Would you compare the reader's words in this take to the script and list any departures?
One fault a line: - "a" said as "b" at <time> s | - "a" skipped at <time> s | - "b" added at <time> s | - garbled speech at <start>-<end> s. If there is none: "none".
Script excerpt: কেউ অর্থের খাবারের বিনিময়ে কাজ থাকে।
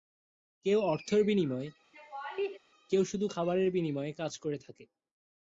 - "বিনিময়ে কেউ শুধু" added at 1.2 s
- "করে" added at 4.4 s